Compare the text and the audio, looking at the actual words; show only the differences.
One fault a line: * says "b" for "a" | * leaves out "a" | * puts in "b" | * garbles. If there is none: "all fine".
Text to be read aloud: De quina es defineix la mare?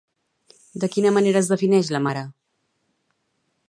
* puts in "manera"